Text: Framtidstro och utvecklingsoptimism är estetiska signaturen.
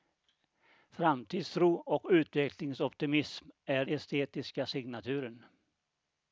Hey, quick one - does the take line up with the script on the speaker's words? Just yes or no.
yes